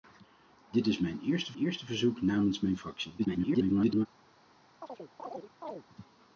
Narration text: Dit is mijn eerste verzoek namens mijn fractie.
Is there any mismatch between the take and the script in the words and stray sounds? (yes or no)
yes